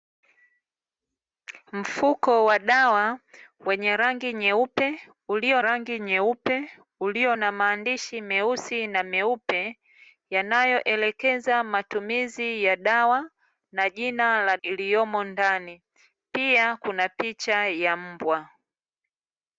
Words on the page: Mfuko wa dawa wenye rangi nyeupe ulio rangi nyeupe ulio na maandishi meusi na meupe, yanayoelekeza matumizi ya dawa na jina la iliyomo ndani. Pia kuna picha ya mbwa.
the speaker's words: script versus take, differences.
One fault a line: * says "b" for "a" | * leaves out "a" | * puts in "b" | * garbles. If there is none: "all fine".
all fine